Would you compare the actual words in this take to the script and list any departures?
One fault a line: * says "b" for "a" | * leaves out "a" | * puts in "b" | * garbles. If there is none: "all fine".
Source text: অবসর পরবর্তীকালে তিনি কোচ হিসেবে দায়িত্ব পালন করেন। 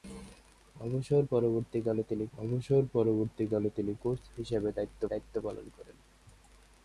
* puts in "অবসর পরবর্তীকালে তিনি"
* puts in "দায়িত্ব"